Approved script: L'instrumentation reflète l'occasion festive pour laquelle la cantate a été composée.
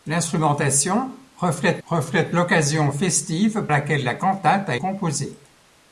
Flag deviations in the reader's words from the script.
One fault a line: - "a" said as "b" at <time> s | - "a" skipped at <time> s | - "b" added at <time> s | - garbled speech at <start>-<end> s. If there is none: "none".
- "reflète" added at 1.8 s
- "pour" skipped at 3.7 s
- "été" skipped at 4.8 s